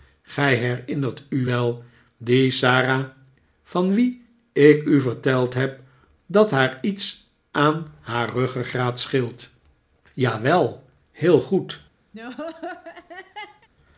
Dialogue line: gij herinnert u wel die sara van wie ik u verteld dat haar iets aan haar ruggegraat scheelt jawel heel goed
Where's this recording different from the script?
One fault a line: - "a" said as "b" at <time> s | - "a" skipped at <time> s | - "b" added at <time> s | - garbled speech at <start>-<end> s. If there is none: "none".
- "heb" added at 5.5 s